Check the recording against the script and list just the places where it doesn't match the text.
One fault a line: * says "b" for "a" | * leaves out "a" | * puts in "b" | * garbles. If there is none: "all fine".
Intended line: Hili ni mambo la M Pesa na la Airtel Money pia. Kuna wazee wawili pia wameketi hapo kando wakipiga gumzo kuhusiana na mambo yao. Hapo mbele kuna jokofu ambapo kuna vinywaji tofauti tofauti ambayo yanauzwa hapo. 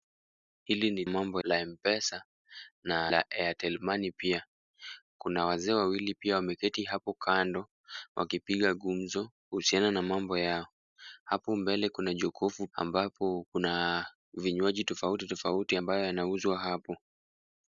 all fine